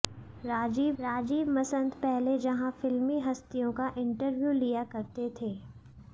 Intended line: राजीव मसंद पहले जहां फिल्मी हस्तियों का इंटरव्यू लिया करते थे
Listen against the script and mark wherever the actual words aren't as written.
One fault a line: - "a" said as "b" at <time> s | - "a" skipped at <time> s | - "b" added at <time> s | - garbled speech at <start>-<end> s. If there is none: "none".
- "राजीव" added at 1.0 s